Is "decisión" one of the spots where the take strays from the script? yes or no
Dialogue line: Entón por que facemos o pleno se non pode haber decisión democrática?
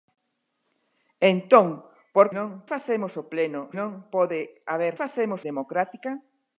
yes